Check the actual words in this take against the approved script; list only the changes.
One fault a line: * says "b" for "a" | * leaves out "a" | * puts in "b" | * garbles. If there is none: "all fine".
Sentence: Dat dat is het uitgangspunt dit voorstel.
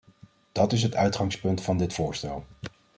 * leaves out "dat"
* puts in "van"